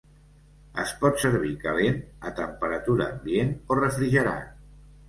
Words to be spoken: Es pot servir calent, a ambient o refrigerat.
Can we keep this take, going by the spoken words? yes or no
no